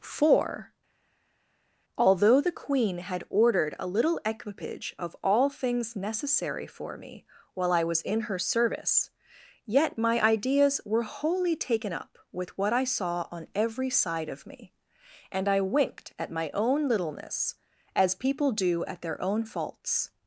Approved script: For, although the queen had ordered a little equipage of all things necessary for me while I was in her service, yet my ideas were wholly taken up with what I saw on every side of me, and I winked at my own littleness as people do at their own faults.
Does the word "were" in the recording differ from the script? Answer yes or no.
no